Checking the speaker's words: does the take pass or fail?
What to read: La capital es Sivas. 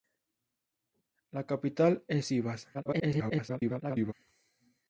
fail